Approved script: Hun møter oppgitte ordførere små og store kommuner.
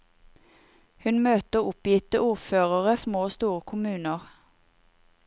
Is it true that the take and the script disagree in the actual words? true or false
false